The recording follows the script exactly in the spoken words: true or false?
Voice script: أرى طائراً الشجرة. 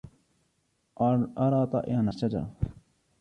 true